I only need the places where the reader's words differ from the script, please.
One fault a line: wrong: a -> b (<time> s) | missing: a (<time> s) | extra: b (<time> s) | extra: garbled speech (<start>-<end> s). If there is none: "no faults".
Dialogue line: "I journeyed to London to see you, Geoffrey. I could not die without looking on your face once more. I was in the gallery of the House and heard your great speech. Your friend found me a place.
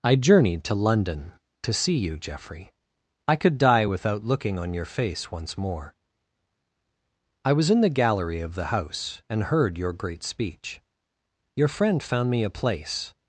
missing: not (3.6 s)